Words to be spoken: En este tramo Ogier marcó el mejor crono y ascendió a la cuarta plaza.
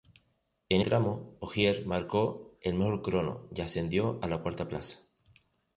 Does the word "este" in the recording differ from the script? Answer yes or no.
yes